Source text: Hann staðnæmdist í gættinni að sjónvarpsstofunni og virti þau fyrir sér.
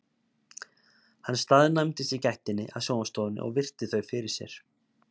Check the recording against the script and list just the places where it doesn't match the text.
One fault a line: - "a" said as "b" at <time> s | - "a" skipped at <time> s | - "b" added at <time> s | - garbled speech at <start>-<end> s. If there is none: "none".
none